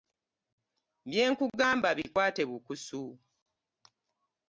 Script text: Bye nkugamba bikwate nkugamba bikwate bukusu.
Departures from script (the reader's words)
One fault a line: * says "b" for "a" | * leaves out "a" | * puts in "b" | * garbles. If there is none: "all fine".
* leaves out "nkugamba bikwate"